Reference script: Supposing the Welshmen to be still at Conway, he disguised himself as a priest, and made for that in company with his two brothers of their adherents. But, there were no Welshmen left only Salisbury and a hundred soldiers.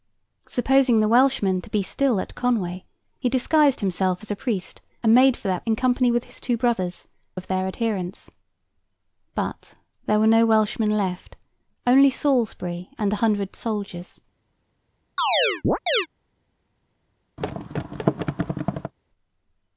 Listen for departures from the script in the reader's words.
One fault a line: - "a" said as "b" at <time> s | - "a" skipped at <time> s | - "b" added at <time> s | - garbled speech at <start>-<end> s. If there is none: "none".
none